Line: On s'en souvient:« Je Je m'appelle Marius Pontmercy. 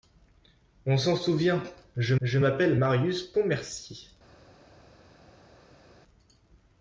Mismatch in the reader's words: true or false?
false